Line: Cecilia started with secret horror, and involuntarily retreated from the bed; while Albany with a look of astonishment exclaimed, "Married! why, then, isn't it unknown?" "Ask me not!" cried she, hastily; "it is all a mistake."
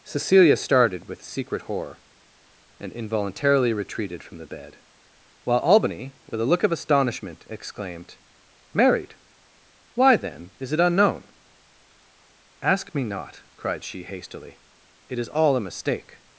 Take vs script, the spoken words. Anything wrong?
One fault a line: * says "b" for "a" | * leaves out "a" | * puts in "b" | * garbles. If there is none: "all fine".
* says "is" for "isn't"